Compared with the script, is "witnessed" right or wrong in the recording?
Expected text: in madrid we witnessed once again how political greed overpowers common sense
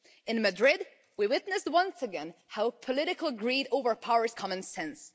right